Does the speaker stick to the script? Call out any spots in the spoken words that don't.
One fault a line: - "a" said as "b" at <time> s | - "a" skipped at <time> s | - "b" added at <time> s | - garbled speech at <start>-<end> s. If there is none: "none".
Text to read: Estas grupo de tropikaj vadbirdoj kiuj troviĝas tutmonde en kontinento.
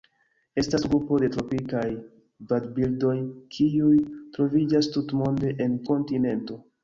none